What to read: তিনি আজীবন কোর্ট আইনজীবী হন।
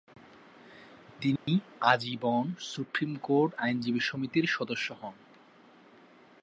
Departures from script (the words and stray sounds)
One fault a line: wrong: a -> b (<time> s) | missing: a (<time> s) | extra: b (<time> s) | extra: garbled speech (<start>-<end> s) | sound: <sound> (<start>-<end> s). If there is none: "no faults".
sound: dropout (1.4-1.5 s)
extra: সুপ্রিম (2.6 s)
extra: সমিতির সদস্য (4.0 s)